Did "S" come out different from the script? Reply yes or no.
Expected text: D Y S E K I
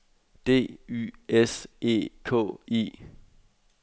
no